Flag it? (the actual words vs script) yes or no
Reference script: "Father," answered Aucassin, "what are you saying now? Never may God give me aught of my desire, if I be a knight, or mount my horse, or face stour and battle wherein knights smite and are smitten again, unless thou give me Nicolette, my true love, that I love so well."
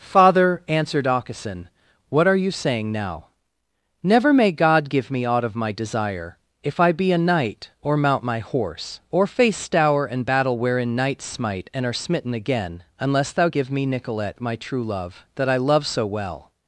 no